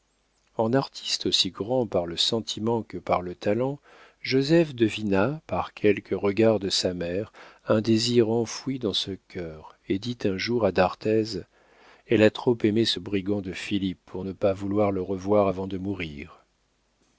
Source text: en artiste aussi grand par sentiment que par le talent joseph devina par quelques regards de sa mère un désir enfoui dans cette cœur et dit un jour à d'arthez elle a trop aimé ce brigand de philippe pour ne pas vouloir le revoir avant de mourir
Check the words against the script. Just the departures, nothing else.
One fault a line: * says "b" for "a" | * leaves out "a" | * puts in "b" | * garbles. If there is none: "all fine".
* puts in "le"
* says "ce" for "cette"